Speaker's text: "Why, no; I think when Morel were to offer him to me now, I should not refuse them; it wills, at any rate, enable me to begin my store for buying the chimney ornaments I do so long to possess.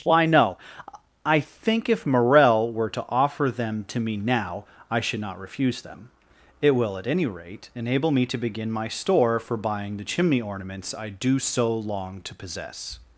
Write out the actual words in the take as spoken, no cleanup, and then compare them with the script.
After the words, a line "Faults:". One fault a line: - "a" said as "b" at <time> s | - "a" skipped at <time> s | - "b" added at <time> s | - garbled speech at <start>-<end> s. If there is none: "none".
"Why, no; I think if Morel were to offer them to me now, I should not refuse them; it will, at any rate, enable me to begin my store for buying the chimney ornaments I do so long to possess.
Faults:
- "when" said as "if" at 1.9 s
- "him" said as "them" at 3.5 s
- "wills" said as "will" at 6.7 s